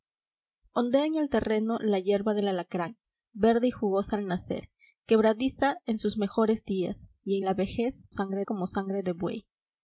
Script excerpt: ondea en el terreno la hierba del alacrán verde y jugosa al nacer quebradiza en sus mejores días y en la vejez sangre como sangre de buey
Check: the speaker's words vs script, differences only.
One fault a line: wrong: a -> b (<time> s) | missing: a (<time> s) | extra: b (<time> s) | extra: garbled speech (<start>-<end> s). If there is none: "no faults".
no faults